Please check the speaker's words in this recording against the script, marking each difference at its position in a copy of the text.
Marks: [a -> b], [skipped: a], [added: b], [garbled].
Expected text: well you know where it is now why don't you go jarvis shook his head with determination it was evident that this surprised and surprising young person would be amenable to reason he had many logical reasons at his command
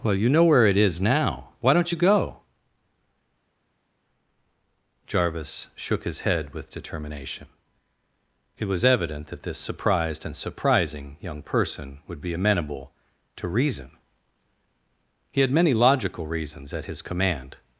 well you know where it is now why don't you go jarvis shook his head with determination it was evident that this surprised and surprising young person would be amenable to reason he had many logical reasons at his command